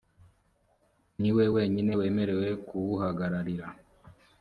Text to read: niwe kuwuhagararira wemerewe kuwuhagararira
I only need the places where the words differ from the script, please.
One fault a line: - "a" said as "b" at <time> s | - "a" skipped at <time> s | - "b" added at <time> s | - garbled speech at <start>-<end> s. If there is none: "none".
- "kuwuhagararira" said as "wenyine" at 1.5 s